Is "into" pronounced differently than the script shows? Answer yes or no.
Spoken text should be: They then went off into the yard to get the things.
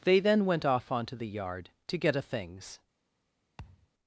yes